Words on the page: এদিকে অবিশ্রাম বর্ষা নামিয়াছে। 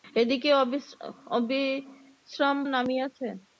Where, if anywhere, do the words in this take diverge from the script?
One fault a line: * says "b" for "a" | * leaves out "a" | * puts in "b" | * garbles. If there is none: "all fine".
* leaves out "বর্ষা"